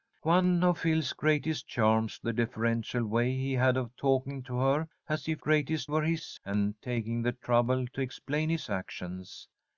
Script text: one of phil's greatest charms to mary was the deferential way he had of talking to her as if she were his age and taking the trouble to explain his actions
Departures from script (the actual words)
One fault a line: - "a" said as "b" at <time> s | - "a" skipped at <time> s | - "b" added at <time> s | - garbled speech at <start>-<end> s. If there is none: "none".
- "to mary was" skipped at 2.2 s
- "she" said as "greatest" at 5.4 s
- "age" skipped at 6.4 s